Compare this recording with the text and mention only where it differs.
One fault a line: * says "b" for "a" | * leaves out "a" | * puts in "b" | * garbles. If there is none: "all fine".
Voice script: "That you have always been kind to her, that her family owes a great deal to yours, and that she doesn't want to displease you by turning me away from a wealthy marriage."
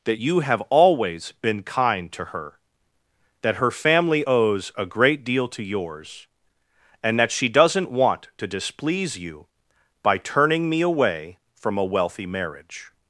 all fine